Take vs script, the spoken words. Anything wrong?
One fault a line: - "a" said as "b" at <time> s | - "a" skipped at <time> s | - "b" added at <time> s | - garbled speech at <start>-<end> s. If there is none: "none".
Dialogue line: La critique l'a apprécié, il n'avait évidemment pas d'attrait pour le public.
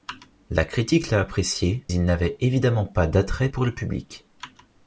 none